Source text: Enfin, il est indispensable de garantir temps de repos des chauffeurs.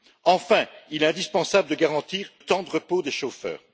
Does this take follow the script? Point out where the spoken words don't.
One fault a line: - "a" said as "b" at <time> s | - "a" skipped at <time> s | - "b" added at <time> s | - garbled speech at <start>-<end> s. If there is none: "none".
none